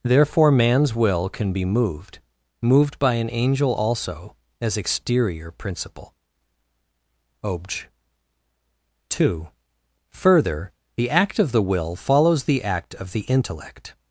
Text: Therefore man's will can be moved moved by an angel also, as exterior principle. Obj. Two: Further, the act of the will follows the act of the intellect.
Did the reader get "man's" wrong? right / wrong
right